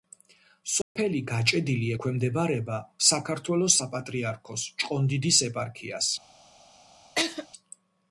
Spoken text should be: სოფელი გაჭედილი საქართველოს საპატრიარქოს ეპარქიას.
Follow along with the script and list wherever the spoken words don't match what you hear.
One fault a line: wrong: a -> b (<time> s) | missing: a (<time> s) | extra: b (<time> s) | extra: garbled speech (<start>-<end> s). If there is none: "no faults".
extra: ექვემდებარება (1.9 s)
extra: ჭყონდიდის (4.8 s)